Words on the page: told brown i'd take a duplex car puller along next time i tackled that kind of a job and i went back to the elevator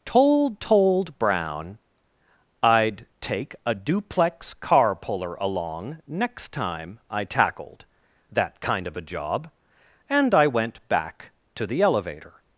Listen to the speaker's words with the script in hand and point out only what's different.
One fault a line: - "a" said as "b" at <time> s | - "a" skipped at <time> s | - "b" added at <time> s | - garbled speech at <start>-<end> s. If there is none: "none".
- "told" added at 0.6 s